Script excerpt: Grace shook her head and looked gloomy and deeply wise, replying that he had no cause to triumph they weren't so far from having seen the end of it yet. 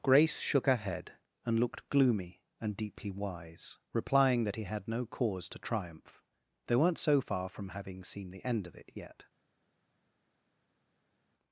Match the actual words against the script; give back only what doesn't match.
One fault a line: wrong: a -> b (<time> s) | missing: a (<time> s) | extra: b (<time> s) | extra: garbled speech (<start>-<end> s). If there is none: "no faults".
no faults